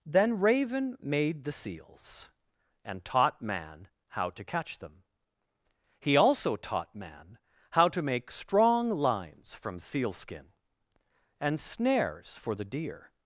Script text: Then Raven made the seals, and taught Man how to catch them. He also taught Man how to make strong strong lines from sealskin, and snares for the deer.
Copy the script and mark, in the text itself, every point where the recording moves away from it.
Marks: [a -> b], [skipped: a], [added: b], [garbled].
Then Raven made the seals, and taught Man how to catch them. He also taught Man how to make strong [skipped: strong] lines from sealskin, and snares for the deer.